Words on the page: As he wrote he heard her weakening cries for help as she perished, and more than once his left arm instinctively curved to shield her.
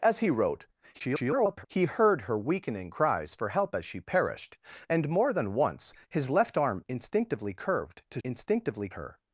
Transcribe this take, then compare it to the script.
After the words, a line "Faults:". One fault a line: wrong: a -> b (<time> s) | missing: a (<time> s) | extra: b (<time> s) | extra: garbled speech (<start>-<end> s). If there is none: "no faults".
As he wrote [garbled] he heard her weakening cries for help as she perished, and more than once his left arm instinctively curved to instinctively her.
Faults:
extra: garbled speech (0.9-1.7 s)
wrong: shield -> instinctively (8.2 s)